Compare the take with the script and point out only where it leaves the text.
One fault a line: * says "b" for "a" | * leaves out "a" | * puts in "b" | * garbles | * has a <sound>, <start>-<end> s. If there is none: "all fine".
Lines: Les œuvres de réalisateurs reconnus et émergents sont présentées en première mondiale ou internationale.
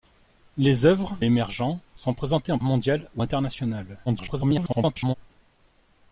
* leaves out "de réalisateurs reconnus"
* leaves out "première"
* garbles